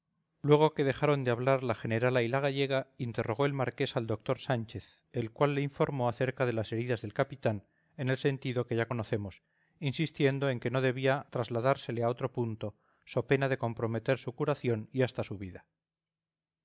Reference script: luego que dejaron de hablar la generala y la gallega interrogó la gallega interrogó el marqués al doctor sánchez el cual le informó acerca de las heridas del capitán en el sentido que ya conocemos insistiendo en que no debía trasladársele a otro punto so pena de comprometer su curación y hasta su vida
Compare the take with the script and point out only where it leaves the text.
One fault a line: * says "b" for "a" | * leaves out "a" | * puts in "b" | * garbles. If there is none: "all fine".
* leaves out "la gallega interrogó"